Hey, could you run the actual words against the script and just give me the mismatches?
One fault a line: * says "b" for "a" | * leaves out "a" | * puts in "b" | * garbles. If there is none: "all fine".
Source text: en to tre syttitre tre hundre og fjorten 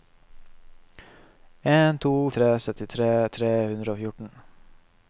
all fine